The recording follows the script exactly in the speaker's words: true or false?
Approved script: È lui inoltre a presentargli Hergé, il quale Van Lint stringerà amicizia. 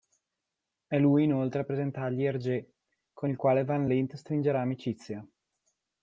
false